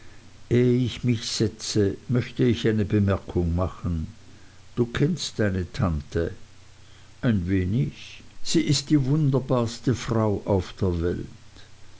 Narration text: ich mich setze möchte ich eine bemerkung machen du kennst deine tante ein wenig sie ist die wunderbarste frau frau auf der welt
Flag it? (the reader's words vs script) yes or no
yes